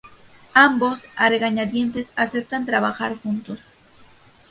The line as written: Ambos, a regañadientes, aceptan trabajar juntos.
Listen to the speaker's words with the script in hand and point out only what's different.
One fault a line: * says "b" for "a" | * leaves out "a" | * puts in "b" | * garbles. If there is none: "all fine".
all fine